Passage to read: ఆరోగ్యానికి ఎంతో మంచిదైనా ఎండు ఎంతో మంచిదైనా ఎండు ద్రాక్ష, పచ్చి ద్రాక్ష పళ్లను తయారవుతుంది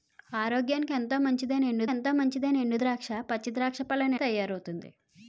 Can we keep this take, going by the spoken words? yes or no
yes